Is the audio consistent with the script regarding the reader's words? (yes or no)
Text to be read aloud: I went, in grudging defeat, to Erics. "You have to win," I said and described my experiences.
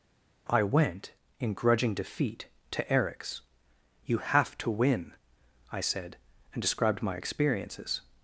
yes